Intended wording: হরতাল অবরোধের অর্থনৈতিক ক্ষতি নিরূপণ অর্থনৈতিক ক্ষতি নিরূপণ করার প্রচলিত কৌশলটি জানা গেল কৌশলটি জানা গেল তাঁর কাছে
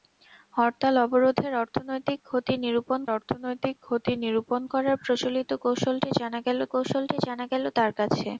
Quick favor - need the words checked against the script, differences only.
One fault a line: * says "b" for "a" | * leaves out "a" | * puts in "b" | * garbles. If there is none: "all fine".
all fine